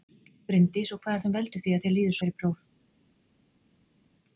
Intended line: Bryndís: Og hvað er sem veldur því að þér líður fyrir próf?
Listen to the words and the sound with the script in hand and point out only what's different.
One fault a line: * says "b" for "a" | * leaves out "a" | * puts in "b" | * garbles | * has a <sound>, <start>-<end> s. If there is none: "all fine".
all fine